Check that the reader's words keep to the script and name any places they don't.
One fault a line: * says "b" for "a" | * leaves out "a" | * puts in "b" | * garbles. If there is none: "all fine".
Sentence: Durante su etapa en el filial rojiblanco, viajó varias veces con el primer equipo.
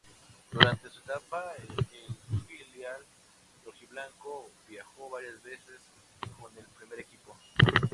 all fine